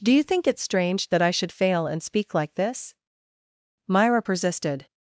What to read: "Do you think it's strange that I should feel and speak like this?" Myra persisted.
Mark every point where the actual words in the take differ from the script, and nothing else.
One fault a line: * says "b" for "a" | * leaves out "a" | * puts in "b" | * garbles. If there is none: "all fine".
* says "fail" for "feel"